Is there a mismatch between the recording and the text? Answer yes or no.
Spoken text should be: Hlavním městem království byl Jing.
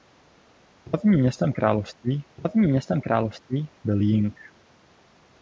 yes